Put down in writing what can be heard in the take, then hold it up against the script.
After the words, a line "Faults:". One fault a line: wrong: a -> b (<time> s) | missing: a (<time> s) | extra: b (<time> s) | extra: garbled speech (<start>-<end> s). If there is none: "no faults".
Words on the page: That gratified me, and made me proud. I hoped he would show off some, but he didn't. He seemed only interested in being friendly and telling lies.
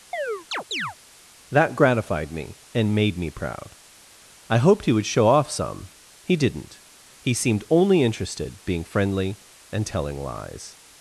That gratified me, and made me proud. I hoped he would show off some, he didn't. He seemed only interested being friendly and telling lies.
Faults:
missing: but (5.9 s)
missing: in (8.6 s)